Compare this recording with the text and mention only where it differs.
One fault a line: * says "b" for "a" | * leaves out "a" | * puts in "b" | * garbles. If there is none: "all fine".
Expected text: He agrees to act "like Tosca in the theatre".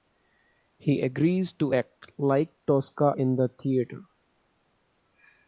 all fine